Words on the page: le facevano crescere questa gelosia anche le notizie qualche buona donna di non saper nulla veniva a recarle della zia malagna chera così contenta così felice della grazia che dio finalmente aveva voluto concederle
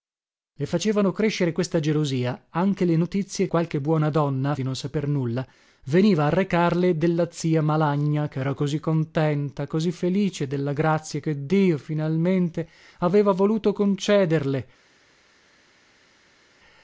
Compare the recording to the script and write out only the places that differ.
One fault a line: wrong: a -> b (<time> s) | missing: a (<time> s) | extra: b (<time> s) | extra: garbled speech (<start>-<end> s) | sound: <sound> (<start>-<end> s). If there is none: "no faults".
no faults